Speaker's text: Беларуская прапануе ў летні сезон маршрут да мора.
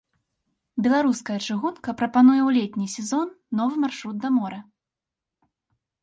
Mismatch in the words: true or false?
true